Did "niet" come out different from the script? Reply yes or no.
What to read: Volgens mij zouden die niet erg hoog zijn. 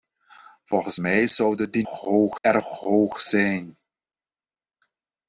yes